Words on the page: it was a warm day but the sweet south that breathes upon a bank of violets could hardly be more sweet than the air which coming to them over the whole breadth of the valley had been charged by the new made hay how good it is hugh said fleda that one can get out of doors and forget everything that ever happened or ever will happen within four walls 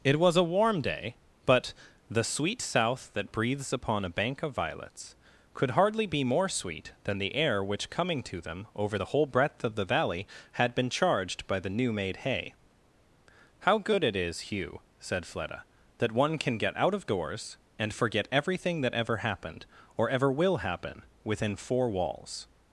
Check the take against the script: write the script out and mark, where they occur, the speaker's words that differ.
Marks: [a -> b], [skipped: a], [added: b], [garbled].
it was a warm day but the sweet south that breathes upon a bank of violets could hardly be more sweet than the air which coming to them over the whole breadth of the valley had been charged by the new made hay how good it is hugh said fleda that one can get out of doors and forget everything that ever happened or ever will happen within four walls